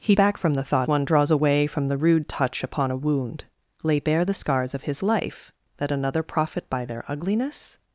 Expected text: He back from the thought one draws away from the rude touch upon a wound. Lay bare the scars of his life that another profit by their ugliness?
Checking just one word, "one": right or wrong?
right